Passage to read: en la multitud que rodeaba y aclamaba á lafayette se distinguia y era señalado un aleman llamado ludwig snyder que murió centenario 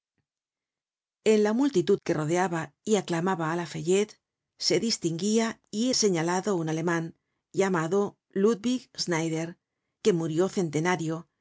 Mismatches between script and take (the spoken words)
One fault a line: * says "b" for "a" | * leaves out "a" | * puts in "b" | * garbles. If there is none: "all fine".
* leaves out "era"